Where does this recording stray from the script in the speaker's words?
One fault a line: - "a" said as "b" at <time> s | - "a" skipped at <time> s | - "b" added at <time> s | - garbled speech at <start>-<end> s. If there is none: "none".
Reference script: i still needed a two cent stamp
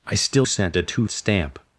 - "needed" said as "cent" at 0.4 s
- "cent" skipped at 1.1 s